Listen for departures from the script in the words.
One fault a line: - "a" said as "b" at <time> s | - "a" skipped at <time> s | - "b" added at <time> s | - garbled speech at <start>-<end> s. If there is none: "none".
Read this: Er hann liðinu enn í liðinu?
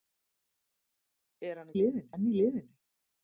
none